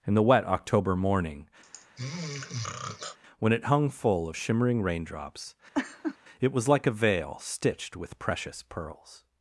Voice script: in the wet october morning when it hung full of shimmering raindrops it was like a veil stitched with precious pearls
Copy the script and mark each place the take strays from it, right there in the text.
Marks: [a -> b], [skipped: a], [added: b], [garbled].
in the wet october morning when it hung full of shimmering raindrops it was like a veil stitched with precious pearls